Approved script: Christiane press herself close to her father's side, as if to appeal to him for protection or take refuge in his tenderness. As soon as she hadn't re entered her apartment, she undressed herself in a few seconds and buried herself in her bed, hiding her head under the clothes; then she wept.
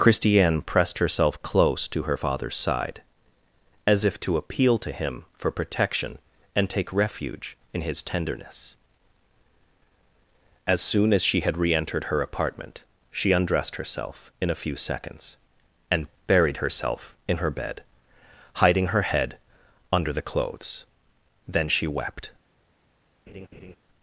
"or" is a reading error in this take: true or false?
true